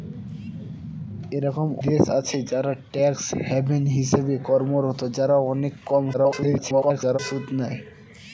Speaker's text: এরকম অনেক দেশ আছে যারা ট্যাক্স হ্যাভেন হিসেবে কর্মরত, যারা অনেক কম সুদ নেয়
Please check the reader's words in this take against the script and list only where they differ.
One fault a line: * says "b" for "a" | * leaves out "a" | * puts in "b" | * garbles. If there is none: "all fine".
* leaves out "অনেক"
* garbles